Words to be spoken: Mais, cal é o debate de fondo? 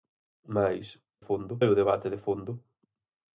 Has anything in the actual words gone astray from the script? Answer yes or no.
yes